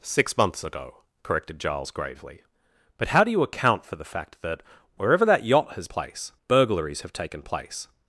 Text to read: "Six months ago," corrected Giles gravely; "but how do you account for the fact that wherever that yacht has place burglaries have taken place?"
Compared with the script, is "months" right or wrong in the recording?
right